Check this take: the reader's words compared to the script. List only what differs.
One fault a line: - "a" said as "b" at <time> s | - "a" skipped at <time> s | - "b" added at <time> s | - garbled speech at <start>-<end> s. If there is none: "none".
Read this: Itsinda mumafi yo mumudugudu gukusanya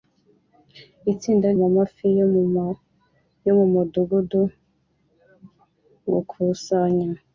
none